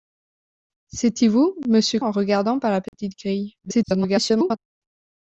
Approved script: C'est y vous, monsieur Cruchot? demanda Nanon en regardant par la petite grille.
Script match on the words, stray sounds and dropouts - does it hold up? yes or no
no